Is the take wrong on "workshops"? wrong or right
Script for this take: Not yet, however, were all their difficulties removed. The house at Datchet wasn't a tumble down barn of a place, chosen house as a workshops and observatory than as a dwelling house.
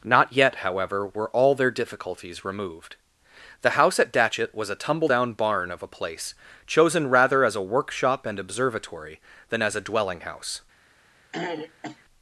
wrong